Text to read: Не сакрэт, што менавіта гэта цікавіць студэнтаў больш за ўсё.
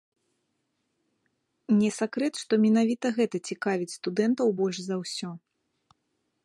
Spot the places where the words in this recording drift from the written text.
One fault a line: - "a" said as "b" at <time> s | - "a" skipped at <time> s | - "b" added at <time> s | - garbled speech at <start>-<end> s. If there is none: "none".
none